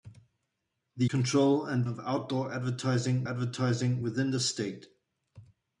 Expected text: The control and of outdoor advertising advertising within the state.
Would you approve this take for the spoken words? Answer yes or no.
yes